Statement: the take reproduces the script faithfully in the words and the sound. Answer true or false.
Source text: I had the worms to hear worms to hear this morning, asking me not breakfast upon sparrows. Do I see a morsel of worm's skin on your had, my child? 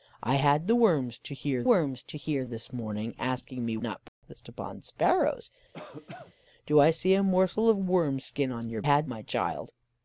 false